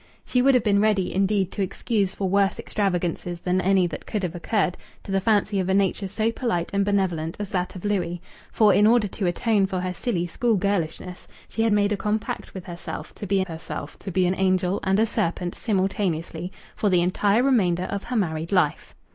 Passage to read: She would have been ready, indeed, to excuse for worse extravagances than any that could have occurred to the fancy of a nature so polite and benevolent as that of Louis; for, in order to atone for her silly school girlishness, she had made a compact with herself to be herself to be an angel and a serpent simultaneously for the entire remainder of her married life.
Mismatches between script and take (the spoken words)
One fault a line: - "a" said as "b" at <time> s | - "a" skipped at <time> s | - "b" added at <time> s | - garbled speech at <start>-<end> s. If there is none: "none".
none